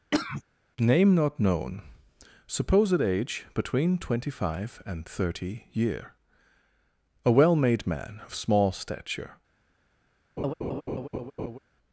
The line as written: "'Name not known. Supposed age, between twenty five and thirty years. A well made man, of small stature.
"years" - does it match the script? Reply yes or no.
no